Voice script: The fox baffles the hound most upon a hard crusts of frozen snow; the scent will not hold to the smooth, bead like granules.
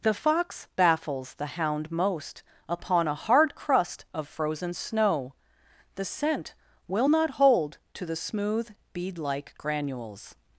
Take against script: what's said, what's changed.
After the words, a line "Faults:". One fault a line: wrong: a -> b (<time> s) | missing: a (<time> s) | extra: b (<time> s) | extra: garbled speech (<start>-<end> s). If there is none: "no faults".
The fox baffles the hound most upon a hard crust of frozen snow; the scent will not hold to the smooth, bead like granules.
Faults:
wrong: crusts -> crust (3.5 s)